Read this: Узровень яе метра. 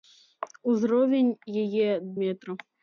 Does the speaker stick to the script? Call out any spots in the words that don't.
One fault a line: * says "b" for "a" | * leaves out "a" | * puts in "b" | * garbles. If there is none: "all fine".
all fine